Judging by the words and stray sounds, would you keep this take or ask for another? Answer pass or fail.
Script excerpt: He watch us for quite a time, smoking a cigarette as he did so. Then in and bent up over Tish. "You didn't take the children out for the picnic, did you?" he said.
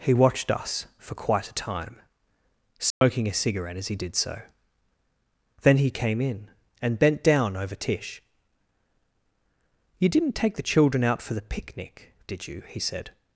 fail